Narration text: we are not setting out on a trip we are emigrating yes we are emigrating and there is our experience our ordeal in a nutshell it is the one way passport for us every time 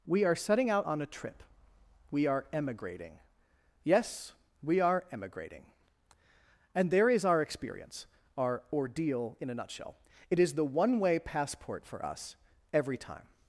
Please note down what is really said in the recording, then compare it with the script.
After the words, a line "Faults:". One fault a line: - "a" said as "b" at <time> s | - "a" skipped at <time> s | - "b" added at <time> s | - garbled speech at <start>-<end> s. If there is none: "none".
we are setting out on a trip we are emigrating yes we are emigrating and there is our experience our ordeal in a nutshell it is the one way passport for us every time
Faults:
- "not" skipped at 0.3 s